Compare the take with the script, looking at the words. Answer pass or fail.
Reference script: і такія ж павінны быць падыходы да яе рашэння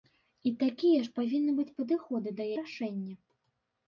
fail